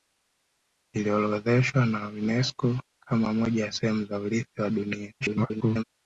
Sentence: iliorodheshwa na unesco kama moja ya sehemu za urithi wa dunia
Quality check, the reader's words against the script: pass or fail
fail